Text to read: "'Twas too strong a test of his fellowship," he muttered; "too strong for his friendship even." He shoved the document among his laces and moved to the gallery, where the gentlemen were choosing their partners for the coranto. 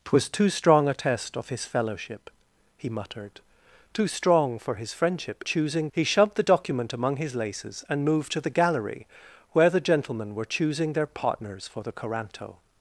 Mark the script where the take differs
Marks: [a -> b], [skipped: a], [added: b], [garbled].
"'Twas too strong a test of his fellowship," he muttered; "too strong for his friendship [even." -> choosing] He shoved the document among his laces and moved to the gallery, where the gentlemen were choosing their partners for the coranto.